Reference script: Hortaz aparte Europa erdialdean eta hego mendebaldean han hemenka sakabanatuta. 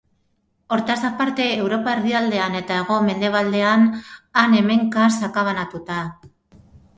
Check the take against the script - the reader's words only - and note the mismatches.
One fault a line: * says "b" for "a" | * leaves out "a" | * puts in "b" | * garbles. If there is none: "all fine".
all fine